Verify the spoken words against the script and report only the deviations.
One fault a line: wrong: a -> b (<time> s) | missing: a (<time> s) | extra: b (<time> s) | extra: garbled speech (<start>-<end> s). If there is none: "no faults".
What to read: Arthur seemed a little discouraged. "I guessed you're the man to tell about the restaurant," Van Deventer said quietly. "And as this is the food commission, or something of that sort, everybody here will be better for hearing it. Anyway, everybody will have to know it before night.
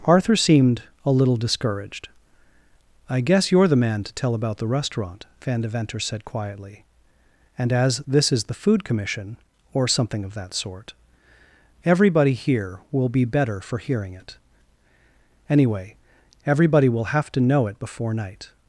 wrong: guessed -> guess (3.2 s)